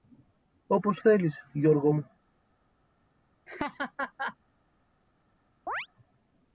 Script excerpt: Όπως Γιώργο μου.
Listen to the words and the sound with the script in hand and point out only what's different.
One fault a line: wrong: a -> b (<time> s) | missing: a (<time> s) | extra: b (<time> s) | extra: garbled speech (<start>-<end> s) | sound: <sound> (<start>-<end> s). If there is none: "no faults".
extra: θέλεις (1.0 s)
sound: laugh (3.5-4.4 s)
sound: chirp (5.7-5.9 s)